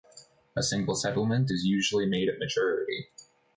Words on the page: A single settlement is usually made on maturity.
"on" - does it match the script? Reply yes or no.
no